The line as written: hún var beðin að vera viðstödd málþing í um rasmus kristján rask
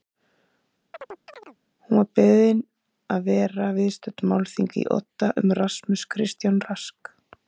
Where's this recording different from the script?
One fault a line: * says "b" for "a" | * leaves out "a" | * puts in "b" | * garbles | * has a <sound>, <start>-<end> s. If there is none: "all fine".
* has a chirp, 0.9-1.6 s
* puts in "odda"